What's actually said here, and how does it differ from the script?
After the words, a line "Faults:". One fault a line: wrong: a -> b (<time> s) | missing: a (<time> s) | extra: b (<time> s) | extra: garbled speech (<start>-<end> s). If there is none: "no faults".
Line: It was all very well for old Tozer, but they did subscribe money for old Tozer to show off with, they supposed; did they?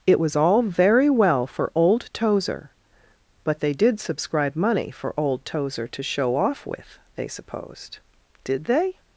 It was all very well for old Tozer, but they did subscribe money for old Tozer to show off with, they supposed; did they?
Faults:
no faults